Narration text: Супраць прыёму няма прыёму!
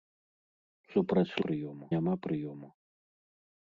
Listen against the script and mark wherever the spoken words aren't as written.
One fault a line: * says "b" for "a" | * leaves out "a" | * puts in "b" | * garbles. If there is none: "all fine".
all fine